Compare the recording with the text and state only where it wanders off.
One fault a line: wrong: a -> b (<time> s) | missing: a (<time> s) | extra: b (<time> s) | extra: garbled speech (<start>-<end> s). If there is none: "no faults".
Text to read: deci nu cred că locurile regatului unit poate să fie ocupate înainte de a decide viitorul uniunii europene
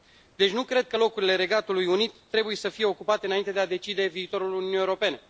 wrong: poate -> trebuie (2.3 s)